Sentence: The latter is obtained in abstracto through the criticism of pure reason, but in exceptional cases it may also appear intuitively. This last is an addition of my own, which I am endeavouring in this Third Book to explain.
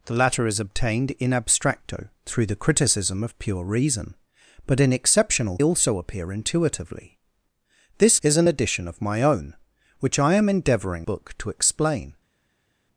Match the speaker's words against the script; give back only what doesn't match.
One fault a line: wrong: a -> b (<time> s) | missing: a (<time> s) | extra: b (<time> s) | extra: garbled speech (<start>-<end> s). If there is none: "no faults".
missing: cases it may (5.6 s)
missing: last (8.2 s)
missing: in this Third (11.1 s)